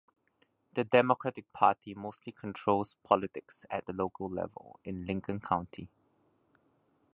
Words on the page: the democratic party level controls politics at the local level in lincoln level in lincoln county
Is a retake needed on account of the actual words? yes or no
yes